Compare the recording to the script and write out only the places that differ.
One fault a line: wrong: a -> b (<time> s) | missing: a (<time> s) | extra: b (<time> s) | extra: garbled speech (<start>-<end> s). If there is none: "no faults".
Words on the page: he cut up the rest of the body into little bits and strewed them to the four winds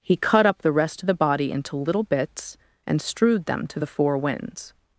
no faults